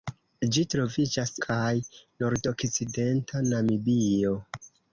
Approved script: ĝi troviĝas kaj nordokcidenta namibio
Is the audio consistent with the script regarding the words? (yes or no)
yes